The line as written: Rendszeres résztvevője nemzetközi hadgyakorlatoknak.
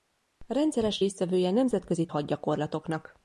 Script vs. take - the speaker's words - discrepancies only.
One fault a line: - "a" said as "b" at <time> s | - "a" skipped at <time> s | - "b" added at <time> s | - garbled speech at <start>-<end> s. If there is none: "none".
none